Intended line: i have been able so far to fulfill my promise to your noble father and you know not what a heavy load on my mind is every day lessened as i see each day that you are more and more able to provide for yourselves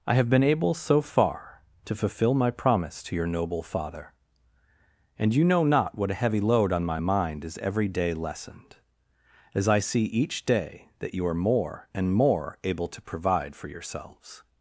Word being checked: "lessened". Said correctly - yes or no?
yes